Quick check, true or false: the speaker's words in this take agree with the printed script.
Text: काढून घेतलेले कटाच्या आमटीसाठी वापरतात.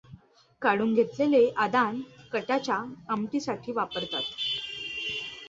false